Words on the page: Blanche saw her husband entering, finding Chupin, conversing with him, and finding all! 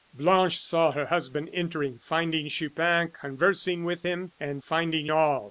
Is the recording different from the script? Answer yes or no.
no